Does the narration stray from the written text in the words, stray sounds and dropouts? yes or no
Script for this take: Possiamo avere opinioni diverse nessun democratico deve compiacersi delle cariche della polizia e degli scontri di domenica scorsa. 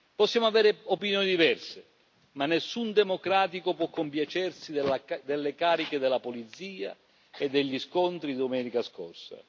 yes